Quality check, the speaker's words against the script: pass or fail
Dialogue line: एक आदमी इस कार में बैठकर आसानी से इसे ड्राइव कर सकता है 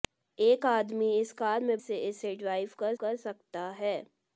fail